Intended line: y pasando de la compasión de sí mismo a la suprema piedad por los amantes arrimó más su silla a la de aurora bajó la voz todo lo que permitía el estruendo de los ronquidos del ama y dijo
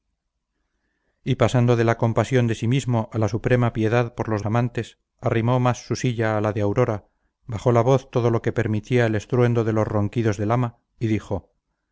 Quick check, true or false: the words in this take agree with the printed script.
true